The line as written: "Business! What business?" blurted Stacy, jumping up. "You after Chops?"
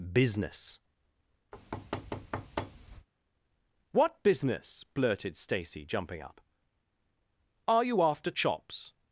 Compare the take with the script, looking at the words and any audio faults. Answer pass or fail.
fail